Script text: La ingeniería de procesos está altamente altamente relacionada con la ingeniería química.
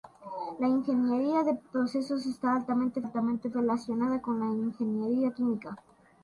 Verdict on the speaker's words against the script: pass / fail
pass